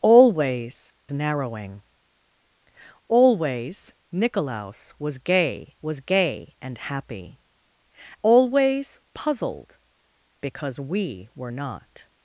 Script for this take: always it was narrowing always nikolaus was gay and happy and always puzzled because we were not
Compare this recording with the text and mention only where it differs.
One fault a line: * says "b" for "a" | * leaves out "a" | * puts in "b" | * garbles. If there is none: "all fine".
* leaves out "it was"
* puts in "was gay"
* leaves out "and"